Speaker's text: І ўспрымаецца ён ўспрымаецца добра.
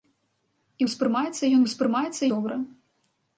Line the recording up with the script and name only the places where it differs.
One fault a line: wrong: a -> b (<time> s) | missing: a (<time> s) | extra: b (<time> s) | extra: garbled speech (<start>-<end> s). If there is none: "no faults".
no faults